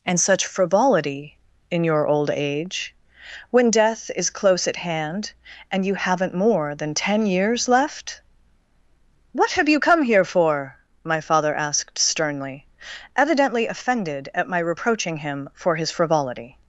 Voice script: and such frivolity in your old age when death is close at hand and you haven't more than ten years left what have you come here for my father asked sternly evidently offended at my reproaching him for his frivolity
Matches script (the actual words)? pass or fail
pass